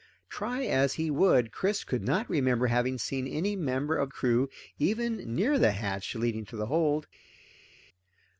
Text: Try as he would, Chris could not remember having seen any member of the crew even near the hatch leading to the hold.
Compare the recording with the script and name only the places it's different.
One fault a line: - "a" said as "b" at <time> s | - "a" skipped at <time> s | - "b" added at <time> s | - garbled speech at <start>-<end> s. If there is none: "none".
- "the" skipped at 4.1 s